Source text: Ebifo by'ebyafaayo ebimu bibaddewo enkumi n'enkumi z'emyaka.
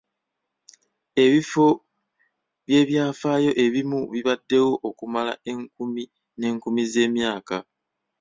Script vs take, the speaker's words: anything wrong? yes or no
yes